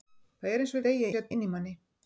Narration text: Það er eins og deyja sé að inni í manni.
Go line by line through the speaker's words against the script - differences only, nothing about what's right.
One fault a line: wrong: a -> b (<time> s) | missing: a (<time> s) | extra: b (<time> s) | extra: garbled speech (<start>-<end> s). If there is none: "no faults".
no faults